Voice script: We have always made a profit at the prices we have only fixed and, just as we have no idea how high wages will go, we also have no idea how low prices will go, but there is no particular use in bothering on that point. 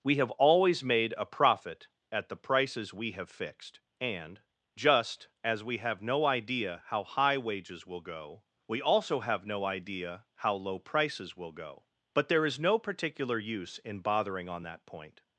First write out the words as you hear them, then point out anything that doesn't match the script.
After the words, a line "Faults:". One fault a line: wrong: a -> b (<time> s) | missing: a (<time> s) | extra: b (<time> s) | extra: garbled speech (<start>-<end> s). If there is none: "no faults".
We have always made a profit at the prices we have fixed and, just as we have no idea how high wages will go, we also have no idea how low prices will go, but there is no particular use in bothering on that point.
Faults:
missing: only (3.3 s)